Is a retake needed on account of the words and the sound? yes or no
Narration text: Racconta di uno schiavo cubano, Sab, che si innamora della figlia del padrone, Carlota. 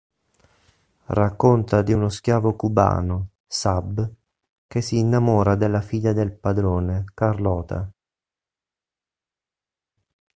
no